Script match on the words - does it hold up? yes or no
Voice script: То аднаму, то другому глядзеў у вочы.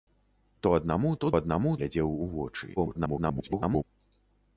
no